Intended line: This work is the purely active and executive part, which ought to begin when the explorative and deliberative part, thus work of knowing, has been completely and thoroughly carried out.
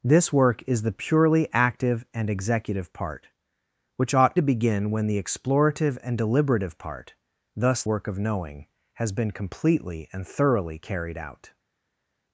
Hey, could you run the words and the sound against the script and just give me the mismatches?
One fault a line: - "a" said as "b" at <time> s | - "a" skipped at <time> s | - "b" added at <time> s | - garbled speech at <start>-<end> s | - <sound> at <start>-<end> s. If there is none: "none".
none